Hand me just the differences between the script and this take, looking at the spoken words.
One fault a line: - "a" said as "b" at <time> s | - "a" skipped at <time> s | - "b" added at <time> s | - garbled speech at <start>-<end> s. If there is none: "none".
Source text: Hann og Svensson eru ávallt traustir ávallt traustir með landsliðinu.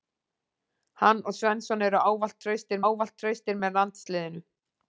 none